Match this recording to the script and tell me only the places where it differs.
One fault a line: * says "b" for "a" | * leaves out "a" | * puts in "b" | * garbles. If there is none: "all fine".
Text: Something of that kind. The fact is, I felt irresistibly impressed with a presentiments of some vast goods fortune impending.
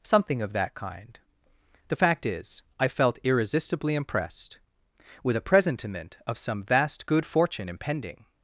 * says "presentiment" for "presentiments"
* says "good" for "goods"